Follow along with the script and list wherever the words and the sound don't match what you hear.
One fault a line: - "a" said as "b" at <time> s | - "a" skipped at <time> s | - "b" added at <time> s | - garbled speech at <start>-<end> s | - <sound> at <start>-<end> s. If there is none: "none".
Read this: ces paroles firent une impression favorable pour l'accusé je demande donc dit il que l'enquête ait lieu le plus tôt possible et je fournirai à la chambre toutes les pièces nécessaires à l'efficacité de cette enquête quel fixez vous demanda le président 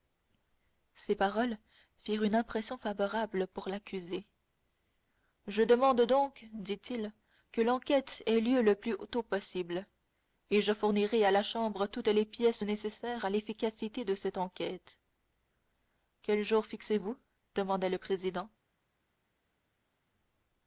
- "jour" added at 16.4 s